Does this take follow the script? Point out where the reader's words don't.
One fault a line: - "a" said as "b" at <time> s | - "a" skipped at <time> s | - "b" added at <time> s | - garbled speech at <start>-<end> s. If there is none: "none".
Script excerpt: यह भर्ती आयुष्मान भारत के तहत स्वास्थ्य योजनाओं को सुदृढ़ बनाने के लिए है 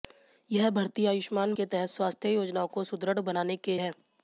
- "भारत" skipped at 1.5 s
- "लिए" skipped at 3.8 s